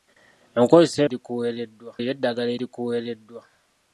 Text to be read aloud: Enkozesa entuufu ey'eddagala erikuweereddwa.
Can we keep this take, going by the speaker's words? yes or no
no